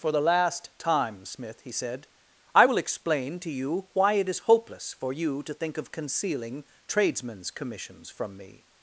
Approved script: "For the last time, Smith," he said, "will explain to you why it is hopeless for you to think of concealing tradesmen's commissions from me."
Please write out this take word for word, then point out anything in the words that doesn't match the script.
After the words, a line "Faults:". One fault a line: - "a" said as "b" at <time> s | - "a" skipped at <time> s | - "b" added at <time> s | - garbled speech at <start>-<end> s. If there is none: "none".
"For the last time, Smith," he said, "I will explain to you why it is hopeless for you to think of concealing tradesmen's commissions from me."
Faults:
- "I" added at 2.5 s